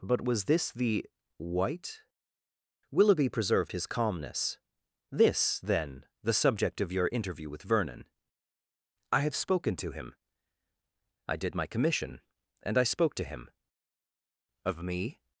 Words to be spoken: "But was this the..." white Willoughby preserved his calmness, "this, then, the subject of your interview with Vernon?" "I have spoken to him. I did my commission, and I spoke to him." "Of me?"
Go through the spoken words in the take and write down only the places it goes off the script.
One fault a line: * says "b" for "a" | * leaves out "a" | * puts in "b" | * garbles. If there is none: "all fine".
all fine